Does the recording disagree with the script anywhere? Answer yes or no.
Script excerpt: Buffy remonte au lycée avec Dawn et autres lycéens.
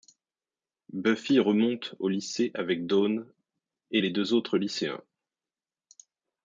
yes